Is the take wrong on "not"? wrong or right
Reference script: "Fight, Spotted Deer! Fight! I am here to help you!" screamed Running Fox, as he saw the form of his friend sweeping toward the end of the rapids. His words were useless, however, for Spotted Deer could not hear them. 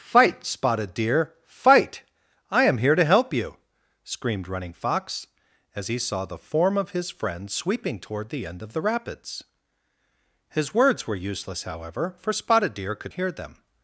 wrong